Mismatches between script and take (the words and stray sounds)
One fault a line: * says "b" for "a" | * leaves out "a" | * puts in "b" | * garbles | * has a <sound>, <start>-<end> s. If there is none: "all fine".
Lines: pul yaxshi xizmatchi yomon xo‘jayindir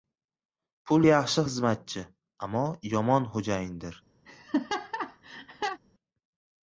* puts in "ammo"
* has a laugh, 4.3-5.8 s